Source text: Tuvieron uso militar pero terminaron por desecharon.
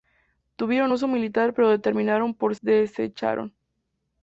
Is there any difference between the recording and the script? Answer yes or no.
no